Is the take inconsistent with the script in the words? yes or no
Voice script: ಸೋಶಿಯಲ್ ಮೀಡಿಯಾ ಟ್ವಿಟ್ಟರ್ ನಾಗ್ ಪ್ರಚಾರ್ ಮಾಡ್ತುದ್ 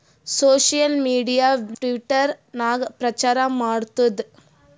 no